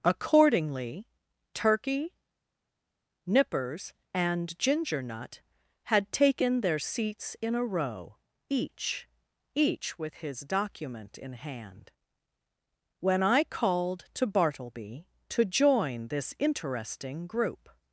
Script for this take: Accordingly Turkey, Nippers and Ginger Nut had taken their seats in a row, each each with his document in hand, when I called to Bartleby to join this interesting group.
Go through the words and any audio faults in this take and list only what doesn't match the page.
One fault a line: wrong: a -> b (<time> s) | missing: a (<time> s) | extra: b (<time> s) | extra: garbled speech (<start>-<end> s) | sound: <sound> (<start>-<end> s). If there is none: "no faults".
no faults